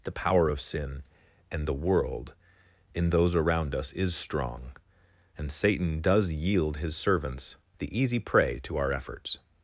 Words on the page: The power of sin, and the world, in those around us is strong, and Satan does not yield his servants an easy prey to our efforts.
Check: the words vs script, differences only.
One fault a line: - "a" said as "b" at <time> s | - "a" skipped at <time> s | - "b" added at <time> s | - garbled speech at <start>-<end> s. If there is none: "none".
- "not" skipped at 6.3 s
- "an" said as "the" at 7.8 s